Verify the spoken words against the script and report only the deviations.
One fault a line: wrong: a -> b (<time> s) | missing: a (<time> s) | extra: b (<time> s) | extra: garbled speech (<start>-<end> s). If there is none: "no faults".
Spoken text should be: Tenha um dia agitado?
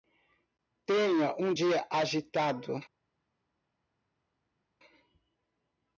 no faults